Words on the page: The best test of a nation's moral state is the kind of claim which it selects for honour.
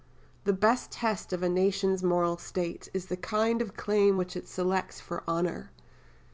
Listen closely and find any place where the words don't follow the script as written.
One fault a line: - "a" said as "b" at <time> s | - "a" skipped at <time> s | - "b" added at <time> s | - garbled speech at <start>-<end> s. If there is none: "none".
none